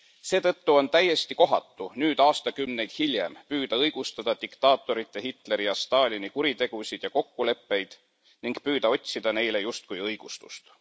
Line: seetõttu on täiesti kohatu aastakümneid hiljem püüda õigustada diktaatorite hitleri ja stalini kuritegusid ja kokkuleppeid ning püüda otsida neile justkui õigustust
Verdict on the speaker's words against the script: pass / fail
fail